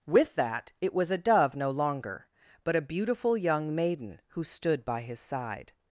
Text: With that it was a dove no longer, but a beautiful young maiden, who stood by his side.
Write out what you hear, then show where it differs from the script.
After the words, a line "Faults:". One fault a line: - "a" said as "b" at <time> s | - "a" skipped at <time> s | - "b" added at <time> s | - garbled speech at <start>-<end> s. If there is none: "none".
With that it was a dove no longer, but a beautiful young maiden, who stood by his side.
Faults:
none